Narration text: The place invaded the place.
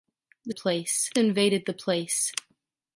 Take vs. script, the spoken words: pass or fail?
pass